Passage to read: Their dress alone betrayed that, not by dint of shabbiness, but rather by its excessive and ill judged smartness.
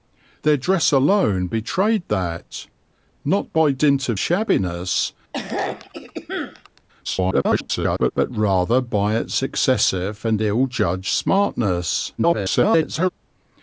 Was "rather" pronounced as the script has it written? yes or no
yes